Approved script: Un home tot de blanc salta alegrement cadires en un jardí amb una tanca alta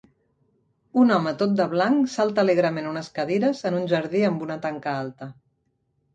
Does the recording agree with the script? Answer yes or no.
no